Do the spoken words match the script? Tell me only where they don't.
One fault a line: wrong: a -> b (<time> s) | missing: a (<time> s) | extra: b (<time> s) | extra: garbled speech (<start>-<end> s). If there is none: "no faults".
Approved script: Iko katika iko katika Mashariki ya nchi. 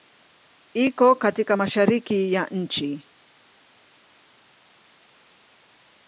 missing: iko katika (1.6 s)